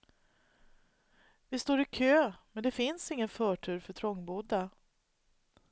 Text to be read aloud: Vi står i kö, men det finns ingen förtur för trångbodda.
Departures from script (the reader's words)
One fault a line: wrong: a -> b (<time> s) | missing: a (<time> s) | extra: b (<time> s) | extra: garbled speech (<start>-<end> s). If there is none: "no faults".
no faults